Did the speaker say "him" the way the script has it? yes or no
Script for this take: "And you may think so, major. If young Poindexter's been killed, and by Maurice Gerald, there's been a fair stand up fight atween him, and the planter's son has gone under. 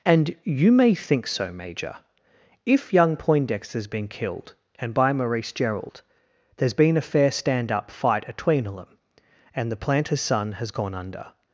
no